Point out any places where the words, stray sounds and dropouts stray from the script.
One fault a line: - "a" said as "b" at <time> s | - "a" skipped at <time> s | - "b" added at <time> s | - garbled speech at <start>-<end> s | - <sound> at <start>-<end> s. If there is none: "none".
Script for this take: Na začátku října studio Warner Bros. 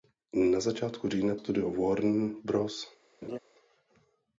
- laugh at 3.2-3.4 s